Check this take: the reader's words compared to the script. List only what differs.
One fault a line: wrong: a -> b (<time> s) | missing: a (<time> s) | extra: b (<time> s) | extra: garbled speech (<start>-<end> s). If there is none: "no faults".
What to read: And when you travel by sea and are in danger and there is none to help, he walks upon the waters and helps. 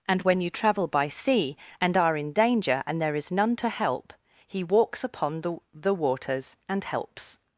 extra: the (5.7 s)